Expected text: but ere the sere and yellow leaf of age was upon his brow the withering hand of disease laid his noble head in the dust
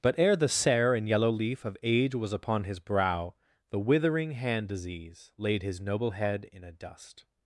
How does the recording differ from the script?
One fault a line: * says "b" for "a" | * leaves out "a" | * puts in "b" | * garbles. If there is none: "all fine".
* leaves out "of"
* says "a" for "the"